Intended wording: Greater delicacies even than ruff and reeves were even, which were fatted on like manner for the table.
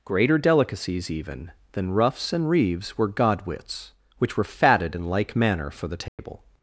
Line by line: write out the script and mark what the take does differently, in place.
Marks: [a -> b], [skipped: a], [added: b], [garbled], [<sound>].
Greater delicacies even than [ruff -> ruffs] and reeves were [even, -> godwits] which were fatted [on -> in] like manner for the table. [dropout]